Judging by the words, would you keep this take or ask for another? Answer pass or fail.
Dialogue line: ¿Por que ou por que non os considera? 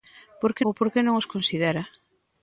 pass